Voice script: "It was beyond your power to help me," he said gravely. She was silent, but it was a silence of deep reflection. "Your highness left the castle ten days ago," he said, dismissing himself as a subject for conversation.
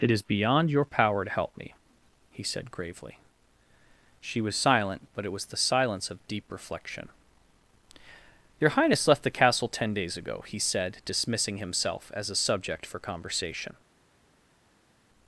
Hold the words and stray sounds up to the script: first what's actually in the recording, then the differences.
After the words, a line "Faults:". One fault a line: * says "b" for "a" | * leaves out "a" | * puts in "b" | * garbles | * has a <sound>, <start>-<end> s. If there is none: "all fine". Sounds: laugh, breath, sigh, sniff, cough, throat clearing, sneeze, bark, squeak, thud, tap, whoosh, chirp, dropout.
"It is beyond your power to help me," he said gravely. She was silent, but it was the silence of deep reflection. "Your highness left the castle ten days ago," he said, dismissing himself as a subject for conversation.
Faults:
* says "is" for "was"
* says "the" for "a"